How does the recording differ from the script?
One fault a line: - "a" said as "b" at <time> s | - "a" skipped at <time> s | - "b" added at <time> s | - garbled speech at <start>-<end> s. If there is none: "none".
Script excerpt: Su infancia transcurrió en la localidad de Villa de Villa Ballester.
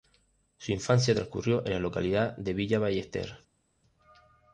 - "de Villa" skipped at 2.8 s